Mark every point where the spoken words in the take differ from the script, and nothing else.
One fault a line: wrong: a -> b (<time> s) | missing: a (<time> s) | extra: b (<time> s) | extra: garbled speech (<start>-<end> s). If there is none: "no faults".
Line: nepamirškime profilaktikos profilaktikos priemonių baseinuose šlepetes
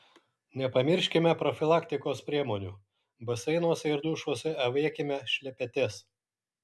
missing: profilaktikos (2.2 s)
extra: ir dušuose avėkime (3.9 s)